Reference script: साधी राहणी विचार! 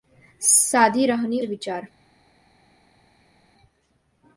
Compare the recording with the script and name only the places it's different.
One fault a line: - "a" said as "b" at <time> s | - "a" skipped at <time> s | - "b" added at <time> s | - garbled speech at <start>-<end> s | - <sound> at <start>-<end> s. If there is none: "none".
none